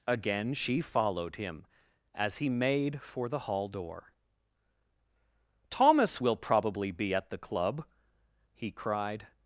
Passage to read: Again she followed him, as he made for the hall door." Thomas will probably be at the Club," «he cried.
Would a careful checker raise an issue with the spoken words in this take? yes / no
no